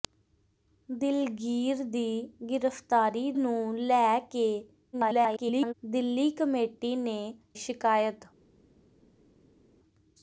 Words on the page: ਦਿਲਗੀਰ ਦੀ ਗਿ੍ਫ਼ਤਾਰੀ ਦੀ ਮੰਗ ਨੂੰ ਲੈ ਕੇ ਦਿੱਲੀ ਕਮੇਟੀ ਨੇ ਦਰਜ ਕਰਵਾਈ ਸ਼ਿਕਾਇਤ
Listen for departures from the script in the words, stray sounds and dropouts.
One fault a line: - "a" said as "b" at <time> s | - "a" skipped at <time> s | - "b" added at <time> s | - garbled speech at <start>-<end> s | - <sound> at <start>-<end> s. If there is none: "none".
- "ਦੀ ਮੰਗ" skipped at 3.3 s
- garbled speech at 4.9-5.7 s
- "ਦਰਜ ਕਰਵਾਈ" skipped at 7.2 s